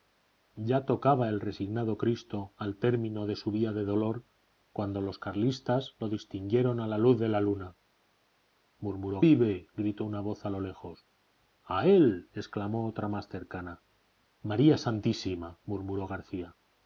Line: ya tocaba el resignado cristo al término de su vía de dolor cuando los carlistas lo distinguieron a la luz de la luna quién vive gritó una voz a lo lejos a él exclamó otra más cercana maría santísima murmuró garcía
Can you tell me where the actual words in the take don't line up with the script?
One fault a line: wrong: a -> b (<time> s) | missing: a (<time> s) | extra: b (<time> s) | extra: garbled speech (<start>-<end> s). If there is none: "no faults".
wrong: quién -> murmuró (8.8 s)